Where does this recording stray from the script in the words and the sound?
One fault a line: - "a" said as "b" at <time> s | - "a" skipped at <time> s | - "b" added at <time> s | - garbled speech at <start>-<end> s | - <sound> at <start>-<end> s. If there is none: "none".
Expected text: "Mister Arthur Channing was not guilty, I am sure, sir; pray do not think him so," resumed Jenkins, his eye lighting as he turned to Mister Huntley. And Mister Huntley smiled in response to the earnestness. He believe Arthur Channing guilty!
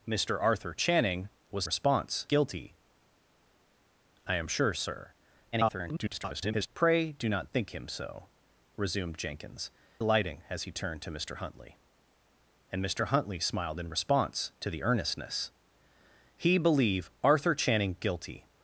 - "not" said as "response" at 1.6 s
- garbled speech at 5.5-6.7 s
- "his eye" skipped at 9.7 s